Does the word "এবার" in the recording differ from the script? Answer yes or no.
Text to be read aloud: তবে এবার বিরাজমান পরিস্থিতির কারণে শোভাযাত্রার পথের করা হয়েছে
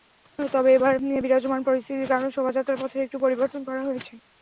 no